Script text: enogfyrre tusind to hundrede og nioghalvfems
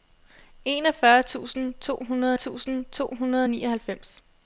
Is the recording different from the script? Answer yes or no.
yes